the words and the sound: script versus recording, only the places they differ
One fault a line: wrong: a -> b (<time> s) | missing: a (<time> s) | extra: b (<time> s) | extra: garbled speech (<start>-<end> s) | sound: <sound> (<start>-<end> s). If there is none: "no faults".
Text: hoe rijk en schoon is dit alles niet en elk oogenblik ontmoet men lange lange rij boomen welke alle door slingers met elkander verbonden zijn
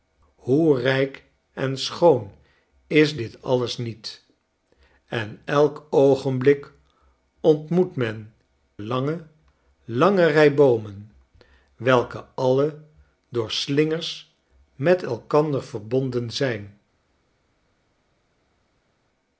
no faults